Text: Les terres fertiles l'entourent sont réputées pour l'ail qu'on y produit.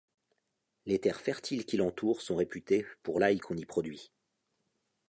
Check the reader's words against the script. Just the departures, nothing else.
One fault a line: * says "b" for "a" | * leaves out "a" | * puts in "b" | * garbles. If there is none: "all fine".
* puts in "qui"